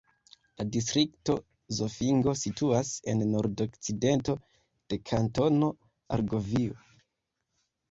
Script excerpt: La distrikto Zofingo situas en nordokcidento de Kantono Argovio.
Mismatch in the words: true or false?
false